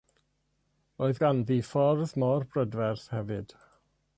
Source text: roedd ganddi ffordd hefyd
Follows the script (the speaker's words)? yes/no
no